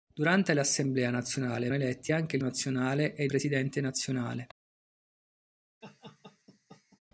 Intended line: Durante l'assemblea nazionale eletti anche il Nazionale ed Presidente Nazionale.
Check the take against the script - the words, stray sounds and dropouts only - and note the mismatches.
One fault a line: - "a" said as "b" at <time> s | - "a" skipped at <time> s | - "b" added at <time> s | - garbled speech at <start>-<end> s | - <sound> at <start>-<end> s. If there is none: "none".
- laugh at 5.8-7.0 s